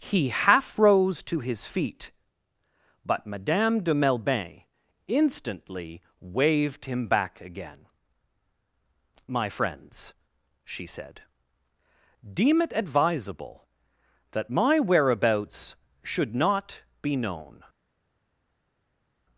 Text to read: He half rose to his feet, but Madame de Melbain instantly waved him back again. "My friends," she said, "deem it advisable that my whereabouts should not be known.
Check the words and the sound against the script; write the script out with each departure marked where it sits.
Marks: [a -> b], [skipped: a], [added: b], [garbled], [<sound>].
He half rose to his feet, but Madame de Melbain instantly waved him back again. "My friends," she said, "deem it advisable that my whereabouts should not be known.